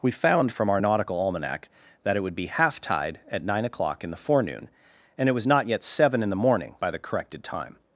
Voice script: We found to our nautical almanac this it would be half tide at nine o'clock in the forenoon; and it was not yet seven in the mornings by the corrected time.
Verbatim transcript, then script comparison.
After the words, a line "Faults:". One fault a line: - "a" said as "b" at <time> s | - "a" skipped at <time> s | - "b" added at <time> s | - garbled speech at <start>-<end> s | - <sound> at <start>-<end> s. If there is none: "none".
We found from our nautical almanac that it would be half tide at nine o'clock in the forenoon; and it was not yet seven in the morning by the corrected time.
Faults:
- "to" said as "from" at 0.5 s
- "this" said as "that" at 2.0 s
- "mornings" said as "morning" at 6.4 s